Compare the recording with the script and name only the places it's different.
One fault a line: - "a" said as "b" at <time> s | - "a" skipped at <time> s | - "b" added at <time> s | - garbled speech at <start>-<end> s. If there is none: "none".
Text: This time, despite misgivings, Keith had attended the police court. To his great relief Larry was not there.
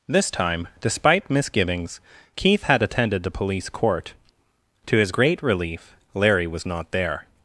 none